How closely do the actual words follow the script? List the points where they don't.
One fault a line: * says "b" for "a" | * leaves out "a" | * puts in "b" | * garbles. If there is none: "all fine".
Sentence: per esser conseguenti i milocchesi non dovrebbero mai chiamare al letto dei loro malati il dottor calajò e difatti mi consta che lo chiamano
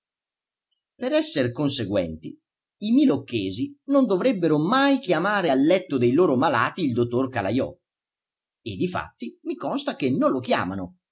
* puts in "non"